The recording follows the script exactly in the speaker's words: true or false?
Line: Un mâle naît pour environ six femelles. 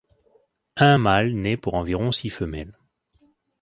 true